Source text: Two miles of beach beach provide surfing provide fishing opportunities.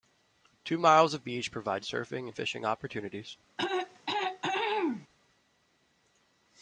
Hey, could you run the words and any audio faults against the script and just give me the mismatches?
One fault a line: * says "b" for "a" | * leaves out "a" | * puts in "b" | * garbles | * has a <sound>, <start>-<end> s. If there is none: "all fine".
* leaves out "beach"
* says "and" for "provide"
* has a throat clearing, 3.6-5.1 s